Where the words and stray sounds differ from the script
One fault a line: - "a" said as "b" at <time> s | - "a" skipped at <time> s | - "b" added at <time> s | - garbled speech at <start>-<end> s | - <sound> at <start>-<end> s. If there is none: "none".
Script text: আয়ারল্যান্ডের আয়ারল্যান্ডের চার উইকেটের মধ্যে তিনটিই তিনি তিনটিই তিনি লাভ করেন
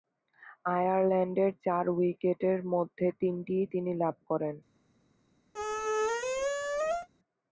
- "আয়ারল্যান্ডের" skipped at 1.5 s
- "তিনটিই তিনি" skipped at 3.9 s
- squeak at 5.5-7.1 s